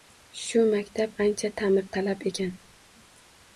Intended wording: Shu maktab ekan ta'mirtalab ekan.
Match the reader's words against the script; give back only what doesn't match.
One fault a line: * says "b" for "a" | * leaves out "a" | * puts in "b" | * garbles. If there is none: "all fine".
* says "ancha" for "ekan"